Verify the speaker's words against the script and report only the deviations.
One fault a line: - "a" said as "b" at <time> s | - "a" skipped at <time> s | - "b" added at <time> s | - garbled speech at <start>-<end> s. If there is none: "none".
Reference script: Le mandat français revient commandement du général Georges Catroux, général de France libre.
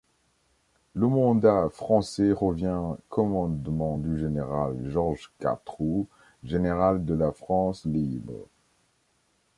- "la" added at 7.1 s